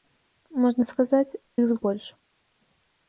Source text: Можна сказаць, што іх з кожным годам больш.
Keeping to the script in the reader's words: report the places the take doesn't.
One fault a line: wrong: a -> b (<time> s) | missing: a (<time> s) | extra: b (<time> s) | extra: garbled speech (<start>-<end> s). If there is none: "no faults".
missing: што (1.4 s)
missing: кожным годам (1.8 s)